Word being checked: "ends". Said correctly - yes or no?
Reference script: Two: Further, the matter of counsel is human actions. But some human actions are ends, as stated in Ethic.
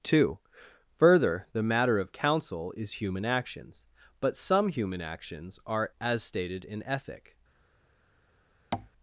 no